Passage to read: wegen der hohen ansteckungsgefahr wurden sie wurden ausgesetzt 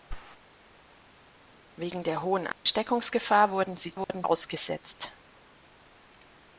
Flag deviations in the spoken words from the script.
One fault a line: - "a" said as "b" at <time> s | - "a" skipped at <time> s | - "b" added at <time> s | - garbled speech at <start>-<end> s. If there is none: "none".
none